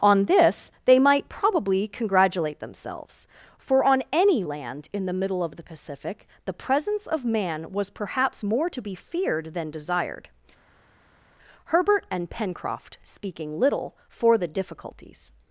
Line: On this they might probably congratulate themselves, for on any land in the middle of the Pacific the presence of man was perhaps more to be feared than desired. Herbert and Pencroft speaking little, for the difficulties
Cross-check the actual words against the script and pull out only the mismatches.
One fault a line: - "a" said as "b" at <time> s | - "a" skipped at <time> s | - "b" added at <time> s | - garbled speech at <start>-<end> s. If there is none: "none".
none